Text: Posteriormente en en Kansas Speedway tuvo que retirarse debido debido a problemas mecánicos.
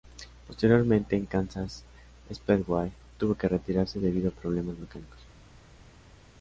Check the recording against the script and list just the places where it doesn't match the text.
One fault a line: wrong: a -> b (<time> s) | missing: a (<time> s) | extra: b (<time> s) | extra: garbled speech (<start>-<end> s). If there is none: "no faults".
missing: en (1.3 s)
missing: debido (4.3 s)